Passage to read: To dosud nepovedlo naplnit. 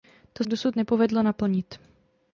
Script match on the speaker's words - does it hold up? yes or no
yes